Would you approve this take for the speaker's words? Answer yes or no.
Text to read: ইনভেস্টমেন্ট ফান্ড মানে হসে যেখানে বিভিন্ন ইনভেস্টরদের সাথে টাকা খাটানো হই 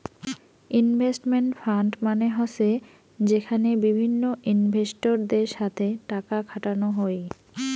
yes